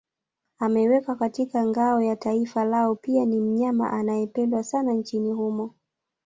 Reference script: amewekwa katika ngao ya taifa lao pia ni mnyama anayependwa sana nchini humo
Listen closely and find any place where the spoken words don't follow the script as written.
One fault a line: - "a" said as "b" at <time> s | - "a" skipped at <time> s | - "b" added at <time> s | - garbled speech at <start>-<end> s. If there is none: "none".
none